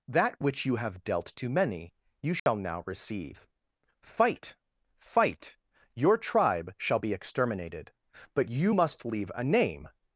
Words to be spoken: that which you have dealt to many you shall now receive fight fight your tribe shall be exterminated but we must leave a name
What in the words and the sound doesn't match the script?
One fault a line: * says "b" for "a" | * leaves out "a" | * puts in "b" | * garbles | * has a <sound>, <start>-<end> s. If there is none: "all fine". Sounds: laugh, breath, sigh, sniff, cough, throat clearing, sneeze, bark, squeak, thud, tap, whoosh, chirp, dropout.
* has a dropout, 2.4-2.5 s
* says "you" for "we"